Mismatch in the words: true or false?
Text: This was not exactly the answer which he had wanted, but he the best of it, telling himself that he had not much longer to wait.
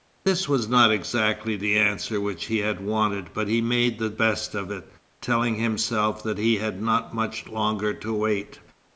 true